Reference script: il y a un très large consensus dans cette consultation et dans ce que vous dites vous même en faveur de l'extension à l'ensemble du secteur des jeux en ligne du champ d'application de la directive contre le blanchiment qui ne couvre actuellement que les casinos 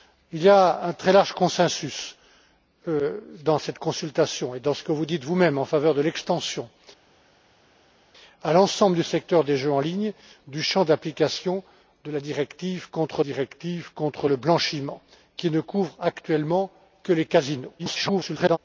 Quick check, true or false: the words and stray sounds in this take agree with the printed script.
false